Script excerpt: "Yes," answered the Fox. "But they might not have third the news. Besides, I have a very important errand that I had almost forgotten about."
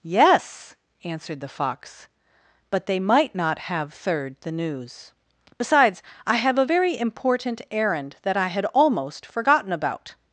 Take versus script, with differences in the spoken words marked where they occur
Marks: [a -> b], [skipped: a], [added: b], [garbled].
"Yes," answered the Fox. "But they might not have third the news. Besides, I have a very important errand that I had almost forgotten about."